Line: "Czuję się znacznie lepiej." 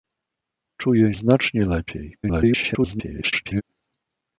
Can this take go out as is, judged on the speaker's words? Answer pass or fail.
fail